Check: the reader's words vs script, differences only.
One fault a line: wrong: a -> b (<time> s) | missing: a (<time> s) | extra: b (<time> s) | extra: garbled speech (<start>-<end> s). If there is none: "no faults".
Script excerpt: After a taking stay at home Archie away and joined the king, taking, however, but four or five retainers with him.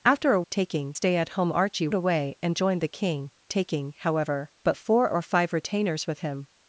no faults